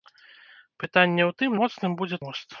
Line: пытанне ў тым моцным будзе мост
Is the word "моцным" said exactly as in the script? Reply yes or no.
yes